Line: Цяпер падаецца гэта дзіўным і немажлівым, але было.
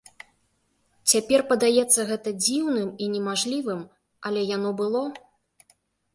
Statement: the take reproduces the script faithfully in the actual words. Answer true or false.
false